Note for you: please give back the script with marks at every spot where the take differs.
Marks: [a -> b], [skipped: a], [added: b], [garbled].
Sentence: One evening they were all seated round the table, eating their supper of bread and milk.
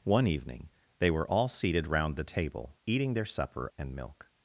One evening they were all seated round the table, eating their supper [skipped: of bread] and milk.